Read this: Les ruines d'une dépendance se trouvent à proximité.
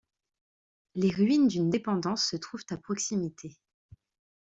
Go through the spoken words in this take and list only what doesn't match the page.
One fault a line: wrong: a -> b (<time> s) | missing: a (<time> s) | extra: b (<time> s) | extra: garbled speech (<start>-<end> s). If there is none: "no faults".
no faults